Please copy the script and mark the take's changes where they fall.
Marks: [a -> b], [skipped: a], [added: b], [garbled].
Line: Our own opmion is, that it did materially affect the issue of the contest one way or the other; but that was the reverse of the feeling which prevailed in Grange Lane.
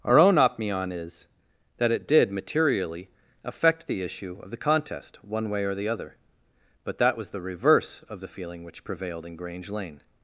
Our own opmion is, that it did materially affect the issue of the contest one way or the other; but that was the reverse of the feeling which prevailed in Grange Lane.